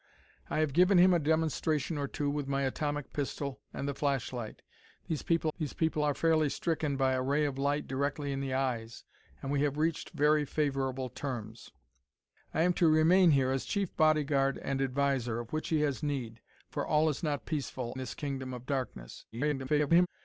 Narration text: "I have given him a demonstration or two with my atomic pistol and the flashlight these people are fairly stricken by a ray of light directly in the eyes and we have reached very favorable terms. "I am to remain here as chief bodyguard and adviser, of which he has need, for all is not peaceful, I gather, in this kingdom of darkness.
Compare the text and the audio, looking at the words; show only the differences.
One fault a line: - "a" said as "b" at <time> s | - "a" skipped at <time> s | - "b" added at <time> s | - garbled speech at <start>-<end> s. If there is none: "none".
- "these people" added at 5.6 s
- "I gather in" skipped at 18.0 s
- garbled speech at 19.3-20.1 s